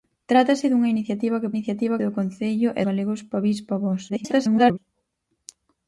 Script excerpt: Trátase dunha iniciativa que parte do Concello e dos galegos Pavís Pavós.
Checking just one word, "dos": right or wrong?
wrong